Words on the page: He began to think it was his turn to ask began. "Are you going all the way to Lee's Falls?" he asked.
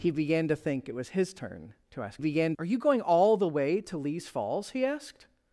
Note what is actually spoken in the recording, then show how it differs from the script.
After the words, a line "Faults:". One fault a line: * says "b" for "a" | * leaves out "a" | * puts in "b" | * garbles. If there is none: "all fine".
He began to think it was his turn to ask began. "Are you going all the way to Lee's Falls?" he asked.
Faults:
all fine